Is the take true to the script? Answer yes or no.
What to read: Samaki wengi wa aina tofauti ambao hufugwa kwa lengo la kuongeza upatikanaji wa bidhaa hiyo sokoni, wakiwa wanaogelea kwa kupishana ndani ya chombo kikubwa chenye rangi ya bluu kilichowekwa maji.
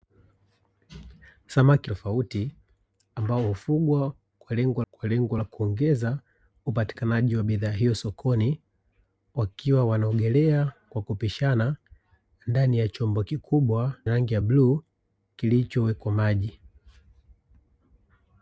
no